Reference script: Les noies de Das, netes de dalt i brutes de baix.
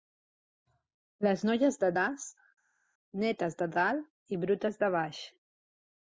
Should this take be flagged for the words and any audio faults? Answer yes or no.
no